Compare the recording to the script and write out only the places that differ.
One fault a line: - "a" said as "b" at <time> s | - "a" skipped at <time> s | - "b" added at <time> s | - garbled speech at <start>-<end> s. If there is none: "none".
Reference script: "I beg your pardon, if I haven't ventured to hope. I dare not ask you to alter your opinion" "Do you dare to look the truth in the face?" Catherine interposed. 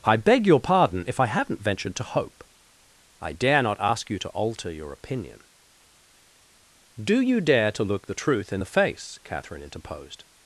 none